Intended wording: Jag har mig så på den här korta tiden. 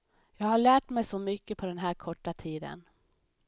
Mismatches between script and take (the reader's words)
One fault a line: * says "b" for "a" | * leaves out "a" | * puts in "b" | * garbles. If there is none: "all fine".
* puts in "lärt"
* puts in "mycket"